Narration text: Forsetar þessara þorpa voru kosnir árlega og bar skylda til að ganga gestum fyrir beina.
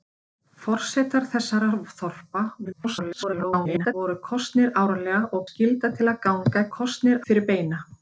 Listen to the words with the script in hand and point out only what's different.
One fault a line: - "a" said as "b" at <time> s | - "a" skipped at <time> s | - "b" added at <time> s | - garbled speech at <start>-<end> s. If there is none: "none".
- garbled speech at 2.6-3.9 s
- "bar" skipped at 5.5 s
- "gestum" said as "kosnir" at 6.8 s